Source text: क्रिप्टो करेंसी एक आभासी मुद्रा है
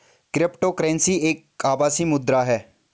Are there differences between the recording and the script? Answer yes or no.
no